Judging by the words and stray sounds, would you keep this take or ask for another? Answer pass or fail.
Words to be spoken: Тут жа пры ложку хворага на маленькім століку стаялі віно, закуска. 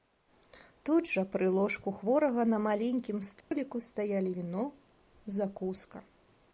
fail